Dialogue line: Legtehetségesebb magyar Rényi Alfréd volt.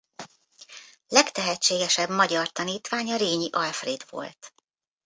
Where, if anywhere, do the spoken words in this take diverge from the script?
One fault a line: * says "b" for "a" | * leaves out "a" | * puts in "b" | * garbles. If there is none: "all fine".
* puts in "tanítványa"